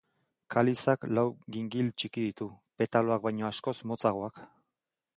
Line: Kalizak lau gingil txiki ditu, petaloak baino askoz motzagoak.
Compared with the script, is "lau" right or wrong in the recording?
right